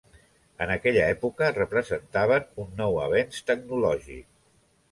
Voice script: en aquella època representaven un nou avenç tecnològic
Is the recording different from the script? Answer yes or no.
no